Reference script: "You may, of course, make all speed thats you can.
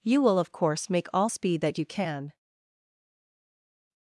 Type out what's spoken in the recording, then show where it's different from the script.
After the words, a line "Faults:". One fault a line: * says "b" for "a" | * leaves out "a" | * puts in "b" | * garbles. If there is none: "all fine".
"You will, of course, make all speed that you can.
Faults:
* says "will" for "may"
* says "that" for "thats"